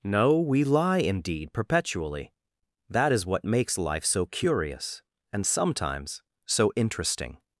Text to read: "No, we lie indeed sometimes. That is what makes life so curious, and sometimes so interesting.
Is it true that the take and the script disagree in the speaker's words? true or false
true